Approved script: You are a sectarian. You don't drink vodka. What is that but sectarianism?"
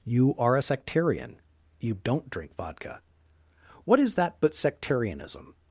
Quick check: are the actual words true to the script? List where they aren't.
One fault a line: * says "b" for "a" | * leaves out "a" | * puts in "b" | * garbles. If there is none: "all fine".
all fine